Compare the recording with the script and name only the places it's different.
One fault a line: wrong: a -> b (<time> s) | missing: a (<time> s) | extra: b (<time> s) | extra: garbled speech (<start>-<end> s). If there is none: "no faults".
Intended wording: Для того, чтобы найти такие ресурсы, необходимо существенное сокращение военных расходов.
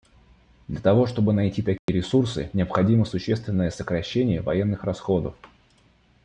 no faults